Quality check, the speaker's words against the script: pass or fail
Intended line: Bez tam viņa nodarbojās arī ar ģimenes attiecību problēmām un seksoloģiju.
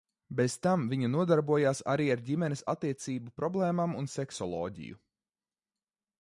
pass